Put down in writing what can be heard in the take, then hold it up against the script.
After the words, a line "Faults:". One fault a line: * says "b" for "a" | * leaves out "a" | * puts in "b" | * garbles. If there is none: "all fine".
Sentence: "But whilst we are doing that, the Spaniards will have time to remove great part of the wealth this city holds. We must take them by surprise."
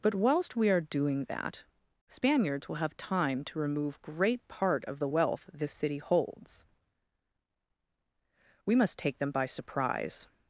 "But whilst we are doing that, Spaniards will have time to remove great part of the wealth this city holds. We must take them by surprise."
Faults:
* leaves out "the"